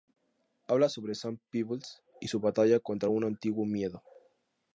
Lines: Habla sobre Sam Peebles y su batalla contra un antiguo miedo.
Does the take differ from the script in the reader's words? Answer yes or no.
no